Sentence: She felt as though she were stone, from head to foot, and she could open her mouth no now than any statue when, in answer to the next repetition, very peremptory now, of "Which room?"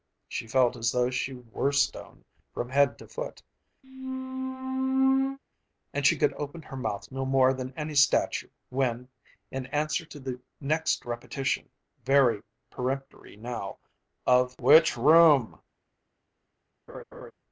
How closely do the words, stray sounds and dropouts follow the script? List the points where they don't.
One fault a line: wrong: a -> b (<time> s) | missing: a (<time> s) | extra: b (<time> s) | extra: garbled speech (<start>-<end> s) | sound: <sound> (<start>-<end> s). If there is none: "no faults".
sound: squeak (3.8-5.4 s)
wrong: now -> more (7.2 s)
sound: laugh (16.9-17.3 s)